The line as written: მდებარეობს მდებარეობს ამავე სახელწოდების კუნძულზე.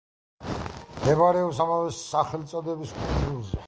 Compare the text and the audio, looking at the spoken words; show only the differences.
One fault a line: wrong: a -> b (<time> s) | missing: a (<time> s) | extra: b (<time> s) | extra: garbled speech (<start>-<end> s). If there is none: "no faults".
missing: მდებარეობს (1.6 s)